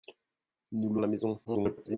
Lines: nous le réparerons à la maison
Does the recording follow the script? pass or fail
fail